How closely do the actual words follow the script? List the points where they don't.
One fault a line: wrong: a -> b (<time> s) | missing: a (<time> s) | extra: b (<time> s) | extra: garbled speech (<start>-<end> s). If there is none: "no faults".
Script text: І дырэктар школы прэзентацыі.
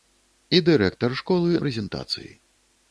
no faults